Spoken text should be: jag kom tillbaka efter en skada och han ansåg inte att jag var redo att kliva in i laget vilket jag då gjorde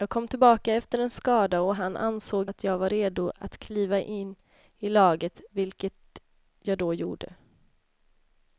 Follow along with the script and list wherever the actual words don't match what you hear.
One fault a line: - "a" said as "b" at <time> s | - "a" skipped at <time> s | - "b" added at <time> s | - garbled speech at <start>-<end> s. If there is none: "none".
- "inte" skipped at 2.5 s